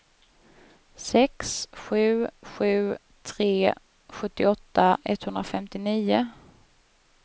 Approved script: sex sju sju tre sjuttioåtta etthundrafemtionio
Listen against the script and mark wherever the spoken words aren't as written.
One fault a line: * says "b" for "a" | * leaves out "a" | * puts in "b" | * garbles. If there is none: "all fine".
all fine